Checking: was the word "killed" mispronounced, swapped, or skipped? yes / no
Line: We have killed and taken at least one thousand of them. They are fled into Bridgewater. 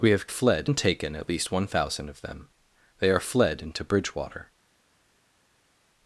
yes